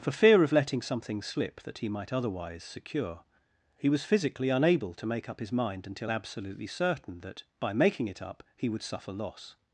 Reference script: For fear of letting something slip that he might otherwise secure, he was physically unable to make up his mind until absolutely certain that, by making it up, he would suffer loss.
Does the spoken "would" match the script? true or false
true